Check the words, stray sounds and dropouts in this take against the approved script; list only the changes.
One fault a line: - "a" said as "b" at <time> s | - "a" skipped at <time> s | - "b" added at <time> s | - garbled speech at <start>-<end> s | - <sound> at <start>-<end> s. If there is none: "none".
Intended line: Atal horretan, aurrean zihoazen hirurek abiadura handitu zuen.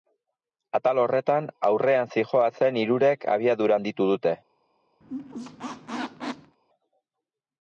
- "zuen" said as "dute" at 4.1 s
- squeak at 5.0-6.6 s